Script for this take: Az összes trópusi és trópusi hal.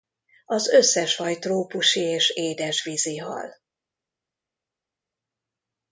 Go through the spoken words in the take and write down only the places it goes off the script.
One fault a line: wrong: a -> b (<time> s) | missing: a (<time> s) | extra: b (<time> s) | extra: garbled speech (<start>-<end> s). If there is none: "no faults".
extra: faj (1.1 s)
wrong: trópusi -> édesvízi (2.3 s)